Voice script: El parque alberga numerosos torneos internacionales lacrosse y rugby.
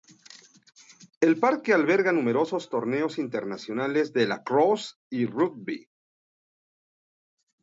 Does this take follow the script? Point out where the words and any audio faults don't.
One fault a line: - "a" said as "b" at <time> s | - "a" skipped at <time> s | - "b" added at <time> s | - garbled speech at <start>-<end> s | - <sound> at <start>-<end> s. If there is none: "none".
- "de" added at 4.1 s